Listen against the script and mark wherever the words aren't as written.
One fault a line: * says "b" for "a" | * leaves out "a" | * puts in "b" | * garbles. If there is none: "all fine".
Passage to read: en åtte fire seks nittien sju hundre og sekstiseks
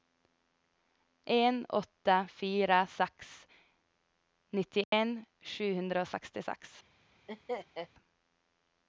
all fine